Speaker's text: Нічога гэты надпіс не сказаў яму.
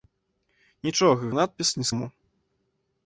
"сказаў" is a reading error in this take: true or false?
true